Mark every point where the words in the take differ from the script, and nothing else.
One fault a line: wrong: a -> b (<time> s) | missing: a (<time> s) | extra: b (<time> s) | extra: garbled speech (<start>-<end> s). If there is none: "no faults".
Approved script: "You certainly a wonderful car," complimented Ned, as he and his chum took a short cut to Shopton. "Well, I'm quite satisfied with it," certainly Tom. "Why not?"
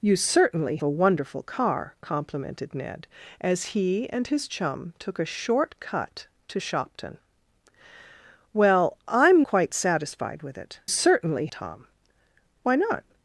no faults